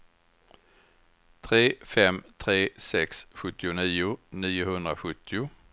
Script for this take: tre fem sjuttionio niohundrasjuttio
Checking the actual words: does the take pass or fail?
fail